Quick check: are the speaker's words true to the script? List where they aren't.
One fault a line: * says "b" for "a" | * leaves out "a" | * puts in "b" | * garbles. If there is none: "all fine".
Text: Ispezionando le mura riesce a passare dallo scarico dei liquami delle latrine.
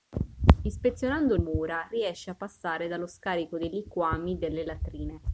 * leaves out "le"